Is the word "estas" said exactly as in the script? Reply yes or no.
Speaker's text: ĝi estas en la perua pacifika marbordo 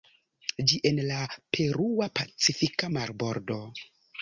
no